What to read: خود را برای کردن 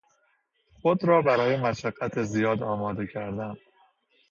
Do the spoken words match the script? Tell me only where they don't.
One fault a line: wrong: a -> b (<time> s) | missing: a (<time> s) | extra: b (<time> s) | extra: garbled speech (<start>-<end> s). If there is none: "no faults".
extra: مشقت زیاد آماده (1.6 s)